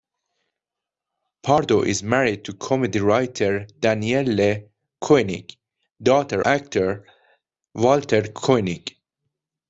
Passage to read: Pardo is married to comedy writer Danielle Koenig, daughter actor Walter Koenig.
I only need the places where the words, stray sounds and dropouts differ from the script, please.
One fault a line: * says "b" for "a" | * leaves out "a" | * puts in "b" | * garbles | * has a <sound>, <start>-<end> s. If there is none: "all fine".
all fine